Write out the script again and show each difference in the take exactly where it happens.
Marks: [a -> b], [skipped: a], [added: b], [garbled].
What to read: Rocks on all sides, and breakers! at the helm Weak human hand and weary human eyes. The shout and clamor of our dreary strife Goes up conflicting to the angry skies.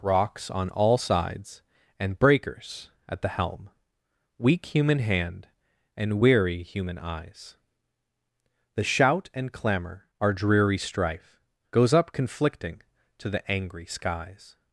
Rocks on all sides, and breakers! at the helm Weak human hand and weary human eyes. The shout and clamor [skipped: of] our dreary strife Goes up conflicting to the angry skies.